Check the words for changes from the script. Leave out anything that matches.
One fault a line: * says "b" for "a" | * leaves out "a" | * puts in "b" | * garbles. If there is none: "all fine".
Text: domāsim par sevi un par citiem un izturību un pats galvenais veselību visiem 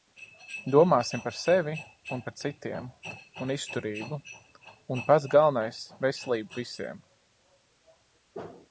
all fine